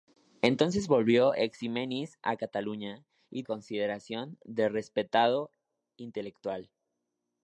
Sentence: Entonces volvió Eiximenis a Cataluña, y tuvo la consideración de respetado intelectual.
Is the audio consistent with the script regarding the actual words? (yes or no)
no